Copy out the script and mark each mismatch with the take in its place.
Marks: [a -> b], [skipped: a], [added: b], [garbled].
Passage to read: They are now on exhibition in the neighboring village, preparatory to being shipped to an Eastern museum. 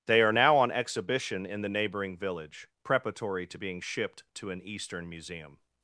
They are now on exhibition in the neighboring village, preparatory to being shipped to an Eastern museum.